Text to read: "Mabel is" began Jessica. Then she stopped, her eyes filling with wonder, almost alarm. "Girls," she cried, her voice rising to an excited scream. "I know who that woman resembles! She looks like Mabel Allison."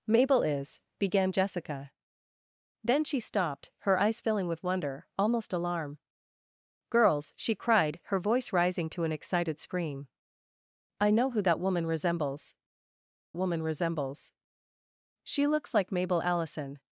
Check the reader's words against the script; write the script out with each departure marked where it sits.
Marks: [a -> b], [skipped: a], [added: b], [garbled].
"Mabel is" began Jessica. Then she stopped, her eyes filling with wonder, almost alarm. "Girls," she cried, her voice rising to an excited scream. "I know who that woman resembles! [added: woman resembles] She looks like Mabel Allison."